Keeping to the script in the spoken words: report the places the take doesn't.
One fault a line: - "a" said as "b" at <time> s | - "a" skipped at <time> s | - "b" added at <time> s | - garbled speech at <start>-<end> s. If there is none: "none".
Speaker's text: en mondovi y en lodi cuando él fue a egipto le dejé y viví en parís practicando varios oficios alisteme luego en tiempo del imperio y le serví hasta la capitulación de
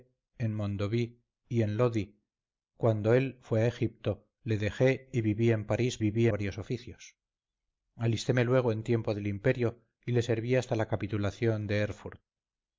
- "practicando" said as "viví" at 6.0 s